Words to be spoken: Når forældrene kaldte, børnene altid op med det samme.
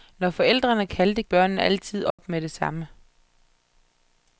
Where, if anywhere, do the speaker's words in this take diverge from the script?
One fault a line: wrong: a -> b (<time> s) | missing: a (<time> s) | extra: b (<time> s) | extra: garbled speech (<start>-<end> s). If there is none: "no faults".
no faults